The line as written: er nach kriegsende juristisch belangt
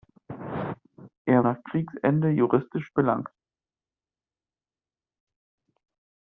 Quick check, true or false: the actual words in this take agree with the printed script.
true